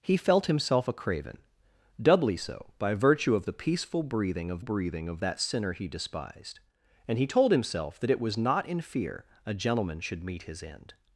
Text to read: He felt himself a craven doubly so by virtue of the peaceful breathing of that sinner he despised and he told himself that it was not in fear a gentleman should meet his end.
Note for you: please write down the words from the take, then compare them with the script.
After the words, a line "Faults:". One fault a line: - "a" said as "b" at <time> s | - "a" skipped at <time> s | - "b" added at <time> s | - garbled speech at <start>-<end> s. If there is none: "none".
He felt himself a craven doubly so by virtue of the peaceful breathing of breathing of that sinner he despised and he told himself that it was not in fear a gentleman should meet his end.
Faults:
- "breathing of" added at 4.6 s